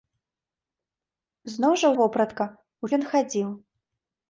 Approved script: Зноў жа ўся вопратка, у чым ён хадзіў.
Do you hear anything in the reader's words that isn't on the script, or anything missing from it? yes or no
yes